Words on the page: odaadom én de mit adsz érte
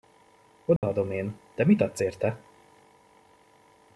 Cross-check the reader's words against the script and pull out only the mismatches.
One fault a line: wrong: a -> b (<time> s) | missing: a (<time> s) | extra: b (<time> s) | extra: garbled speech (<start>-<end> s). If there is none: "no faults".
no faults